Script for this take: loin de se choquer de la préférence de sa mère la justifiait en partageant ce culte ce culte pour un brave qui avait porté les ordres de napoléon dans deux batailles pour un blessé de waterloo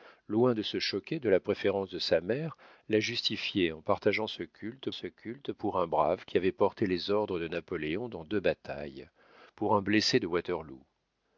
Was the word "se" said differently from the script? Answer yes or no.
no